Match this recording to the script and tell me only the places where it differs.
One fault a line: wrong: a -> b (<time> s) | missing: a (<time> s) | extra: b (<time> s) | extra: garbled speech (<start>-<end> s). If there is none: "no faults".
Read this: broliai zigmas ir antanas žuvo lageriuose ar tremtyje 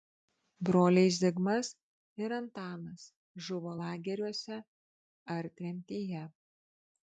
no faults